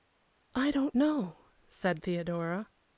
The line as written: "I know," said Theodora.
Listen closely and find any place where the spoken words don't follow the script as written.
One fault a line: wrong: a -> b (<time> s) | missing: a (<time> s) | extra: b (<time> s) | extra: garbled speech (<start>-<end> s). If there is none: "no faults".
extra: don't (0.7 s)